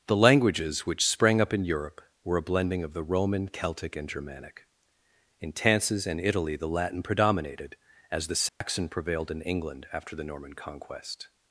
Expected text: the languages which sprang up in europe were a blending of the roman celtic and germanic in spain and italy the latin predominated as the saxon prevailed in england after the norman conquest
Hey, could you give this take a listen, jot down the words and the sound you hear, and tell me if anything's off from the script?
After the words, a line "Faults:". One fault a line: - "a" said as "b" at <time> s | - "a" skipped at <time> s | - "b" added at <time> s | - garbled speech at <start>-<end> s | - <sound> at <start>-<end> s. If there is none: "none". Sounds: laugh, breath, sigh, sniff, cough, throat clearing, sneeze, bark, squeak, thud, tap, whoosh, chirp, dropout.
the languages which sprang up in europe were a blending of the roman celtic and germanic in tances and italy the latin predominated as the saxon prevailed in england after the norman conquest
Faults:
- "spain" said as "tances" at 5.5 s
- dropout at 8.5-8.6 s